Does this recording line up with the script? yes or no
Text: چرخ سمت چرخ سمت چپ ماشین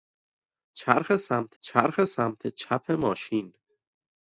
yes